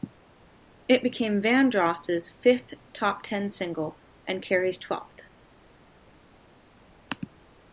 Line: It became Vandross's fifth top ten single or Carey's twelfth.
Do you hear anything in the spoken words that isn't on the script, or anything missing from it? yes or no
yes